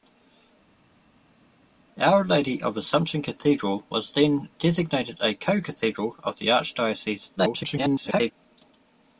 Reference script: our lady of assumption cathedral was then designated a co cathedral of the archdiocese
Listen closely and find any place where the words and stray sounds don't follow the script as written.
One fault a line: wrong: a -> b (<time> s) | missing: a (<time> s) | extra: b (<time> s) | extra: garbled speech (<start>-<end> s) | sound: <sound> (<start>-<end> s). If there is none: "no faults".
extra: garbled speech (7.4-8.3 s)